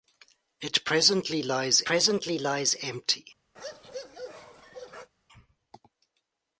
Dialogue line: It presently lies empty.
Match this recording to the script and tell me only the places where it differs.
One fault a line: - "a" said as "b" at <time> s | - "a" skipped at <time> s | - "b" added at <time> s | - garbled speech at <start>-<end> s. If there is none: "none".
- "presently lies" added at 1.8 s